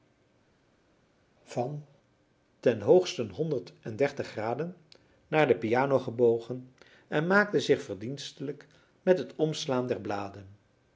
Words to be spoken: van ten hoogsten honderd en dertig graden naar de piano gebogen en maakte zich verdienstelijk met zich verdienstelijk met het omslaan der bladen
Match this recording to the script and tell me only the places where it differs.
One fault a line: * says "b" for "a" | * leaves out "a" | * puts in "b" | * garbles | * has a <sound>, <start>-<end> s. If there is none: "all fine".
* leaves out "zich verdienstelijk met"